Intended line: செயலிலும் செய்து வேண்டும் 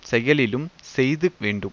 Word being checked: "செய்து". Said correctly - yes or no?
yes